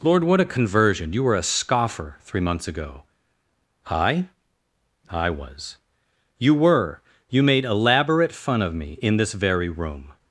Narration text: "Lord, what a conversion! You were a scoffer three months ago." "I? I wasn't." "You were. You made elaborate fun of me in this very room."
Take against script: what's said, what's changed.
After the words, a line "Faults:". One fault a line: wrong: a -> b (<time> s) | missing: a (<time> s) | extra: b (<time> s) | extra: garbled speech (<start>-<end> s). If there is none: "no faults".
"Lord, what a conversion! You were a scoffer three months ago." "I? I was." "You were. You made elaborate fun of me in this very room."
Faults:
wrong: wasn't -> was (5.3 s)